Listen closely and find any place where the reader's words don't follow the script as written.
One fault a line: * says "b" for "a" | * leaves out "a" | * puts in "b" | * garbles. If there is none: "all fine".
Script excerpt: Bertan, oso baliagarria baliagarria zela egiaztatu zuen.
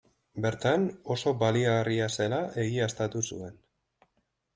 * leaves out "baliagarria"